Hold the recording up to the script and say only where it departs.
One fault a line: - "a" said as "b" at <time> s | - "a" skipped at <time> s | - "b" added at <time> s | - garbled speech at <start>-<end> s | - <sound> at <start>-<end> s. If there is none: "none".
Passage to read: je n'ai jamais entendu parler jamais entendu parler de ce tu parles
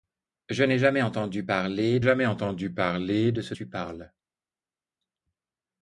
none